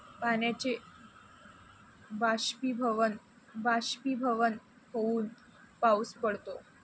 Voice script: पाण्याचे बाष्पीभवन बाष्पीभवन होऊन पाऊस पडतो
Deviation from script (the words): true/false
false